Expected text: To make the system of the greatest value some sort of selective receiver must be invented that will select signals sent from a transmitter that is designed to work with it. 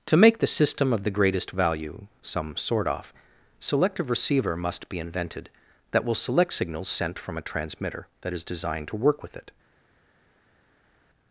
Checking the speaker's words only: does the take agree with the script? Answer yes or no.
no